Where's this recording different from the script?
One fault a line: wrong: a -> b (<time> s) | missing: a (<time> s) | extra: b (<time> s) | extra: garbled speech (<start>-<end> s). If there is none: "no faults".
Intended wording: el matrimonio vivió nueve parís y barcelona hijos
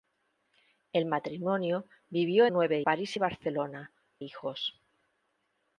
no faults